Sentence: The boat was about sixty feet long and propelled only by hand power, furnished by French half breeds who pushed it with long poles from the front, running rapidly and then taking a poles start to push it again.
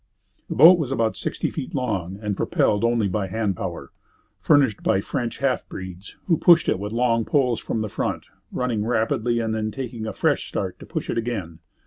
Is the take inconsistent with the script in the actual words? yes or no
yes